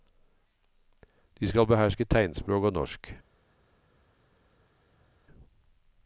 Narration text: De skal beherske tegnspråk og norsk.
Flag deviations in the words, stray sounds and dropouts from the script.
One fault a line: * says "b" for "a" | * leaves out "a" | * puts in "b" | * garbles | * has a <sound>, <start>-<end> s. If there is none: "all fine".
all fine